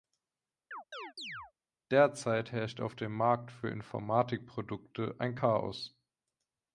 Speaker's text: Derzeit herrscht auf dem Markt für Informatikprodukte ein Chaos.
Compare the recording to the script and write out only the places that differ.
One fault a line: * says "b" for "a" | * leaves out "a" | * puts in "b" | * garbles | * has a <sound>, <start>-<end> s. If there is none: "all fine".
* has a chirp, 0.7-1.5 s